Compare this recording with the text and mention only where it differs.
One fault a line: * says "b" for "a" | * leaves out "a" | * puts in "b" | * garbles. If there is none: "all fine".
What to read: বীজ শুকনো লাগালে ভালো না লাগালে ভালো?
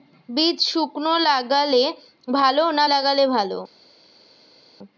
all fine